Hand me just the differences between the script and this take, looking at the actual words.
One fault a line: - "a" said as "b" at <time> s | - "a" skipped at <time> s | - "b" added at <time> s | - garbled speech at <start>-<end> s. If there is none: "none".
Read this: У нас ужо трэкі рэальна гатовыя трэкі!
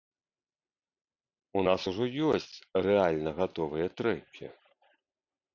- "трэкі" said as "ёсць" at 2.3 s